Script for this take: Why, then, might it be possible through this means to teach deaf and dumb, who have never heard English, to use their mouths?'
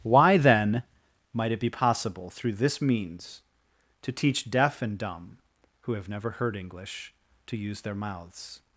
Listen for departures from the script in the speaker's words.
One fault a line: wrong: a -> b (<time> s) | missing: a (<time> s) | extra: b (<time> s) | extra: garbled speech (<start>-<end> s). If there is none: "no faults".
no faults